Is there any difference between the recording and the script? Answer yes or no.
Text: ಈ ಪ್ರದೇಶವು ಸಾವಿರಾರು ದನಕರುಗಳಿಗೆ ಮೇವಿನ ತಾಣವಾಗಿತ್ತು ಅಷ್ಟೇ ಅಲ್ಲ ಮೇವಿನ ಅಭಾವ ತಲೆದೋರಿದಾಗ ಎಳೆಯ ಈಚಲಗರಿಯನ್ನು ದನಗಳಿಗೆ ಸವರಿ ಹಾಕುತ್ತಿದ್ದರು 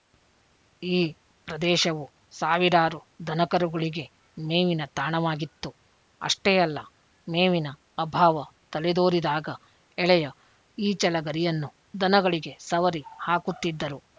no